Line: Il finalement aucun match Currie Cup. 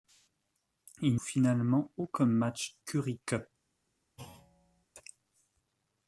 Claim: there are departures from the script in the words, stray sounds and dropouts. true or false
true